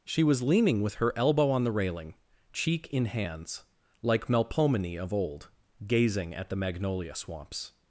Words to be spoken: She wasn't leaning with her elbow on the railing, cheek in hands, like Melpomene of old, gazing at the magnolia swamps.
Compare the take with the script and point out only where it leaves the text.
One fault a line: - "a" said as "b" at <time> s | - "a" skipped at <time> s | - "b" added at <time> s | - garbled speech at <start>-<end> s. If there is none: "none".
- "wasn't" said as "was" at 0.2 s